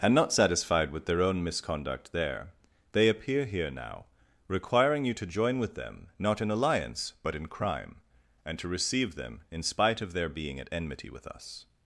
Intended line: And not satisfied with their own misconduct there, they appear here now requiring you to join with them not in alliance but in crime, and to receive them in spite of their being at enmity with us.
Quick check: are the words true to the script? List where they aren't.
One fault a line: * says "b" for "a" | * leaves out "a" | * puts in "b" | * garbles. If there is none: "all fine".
all fine